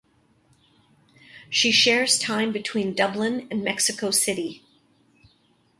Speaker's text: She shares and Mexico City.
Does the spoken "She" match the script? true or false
true